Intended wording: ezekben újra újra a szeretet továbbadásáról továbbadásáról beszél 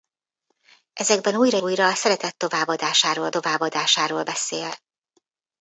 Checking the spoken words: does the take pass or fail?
pass